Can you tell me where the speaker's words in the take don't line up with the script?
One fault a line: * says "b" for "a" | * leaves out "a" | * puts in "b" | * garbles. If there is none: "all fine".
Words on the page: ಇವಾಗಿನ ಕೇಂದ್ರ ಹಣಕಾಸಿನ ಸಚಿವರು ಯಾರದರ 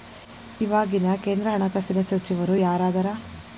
all fine